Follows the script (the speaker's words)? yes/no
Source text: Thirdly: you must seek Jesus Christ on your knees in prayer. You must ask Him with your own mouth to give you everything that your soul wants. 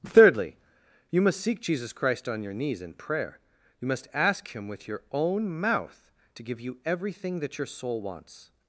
yes